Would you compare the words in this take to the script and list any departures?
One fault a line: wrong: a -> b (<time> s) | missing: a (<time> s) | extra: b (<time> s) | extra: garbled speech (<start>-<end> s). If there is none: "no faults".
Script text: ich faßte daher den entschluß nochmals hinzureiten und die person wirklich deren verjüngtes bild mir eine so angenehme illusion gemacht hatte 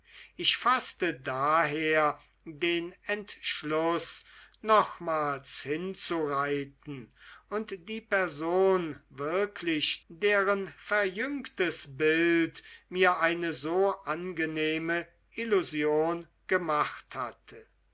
no faults